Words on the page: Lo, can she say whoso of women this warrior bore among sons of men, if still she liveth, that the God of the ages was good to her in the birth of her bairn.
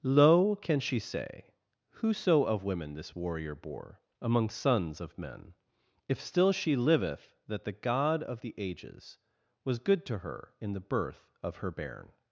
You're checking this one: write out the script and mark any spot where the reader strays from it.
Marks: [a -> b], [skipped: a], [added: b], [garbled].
Lo, can she say whoso of women this warrior bore among sons of men, if still she liveth, that the God of the ages was good to her in the birth of her bairn.